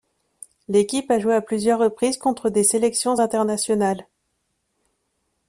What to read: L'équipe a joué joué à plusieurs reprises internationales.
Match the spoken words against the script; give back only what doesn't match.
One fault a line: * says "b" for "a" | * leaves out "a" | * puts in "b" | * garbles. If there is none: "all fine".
* leaves out "joué"
* puts in "contre des sélections"